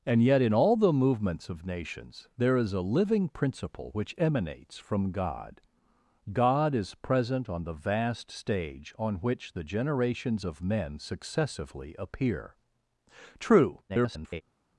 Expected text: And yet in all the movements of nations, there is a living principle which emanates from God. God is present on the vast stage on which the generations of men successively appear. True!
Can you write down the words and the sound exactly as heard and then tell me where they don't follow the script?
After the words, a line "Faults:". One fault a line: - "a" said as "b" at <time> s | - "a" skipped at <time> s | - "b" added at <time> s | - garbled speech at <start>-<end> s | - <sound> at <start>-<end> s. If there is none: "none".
And yet in all the movements of nations, there is a living principle which emanates from God. God is present on the vast stage on which the generations of men successively appear. True! [garbled]
Faults:
- garbled speech at 13.9-14.4 s